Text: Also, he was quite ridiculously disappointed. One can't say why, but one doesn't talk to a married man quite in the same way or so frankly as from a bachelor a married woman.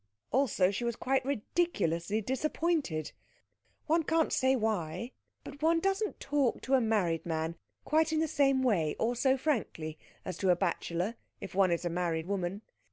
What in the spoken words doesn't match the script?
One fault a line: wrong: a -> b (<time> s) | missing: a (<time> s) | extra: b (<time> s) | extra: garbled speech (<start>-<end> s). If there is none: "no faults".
wrong: he -> she (0.7 s)
wrong: from -> to (10.4 s)
extra: if one is (11.4 s)